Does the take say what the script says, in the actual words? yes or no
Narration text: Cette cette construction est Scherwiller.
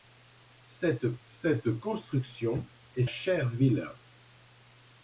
yes